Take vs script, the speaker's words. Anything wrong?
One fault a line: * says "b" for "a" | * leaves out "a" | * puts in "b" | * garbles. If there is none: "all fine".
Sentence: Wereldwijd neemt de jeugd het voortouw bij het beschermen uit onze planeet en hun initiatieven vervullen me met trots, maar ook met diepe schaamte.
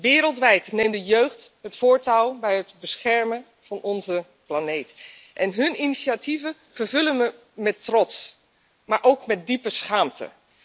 * says "van" for "uit"